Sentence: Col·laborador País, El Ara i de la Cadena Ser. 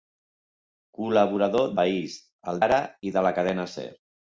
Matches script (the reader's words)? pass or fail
pass